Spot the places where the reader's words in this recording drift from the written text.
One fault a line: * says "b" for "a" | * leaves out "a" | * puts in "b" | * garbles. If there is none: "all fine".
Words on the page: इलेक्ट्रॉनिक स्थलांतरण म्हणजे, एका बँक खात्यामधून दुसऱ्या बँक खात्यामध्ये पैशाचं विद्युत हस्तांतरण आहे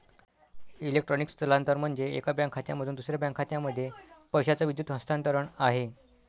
all fine